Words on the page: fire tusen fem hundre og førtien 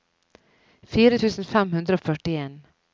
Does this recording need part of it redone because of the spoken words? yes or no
no